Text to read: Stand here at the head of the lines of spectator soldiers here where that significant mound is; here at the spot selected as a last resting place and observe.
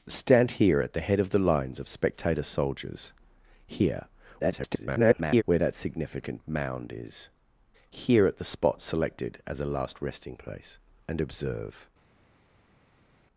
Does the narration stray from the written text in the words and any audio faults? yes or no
yes